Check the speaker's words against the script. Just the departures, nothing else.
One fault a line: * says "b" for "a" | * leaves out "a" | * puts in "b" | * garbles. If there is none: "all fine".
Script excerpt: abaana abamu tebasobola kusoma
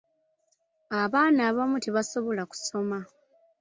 all fine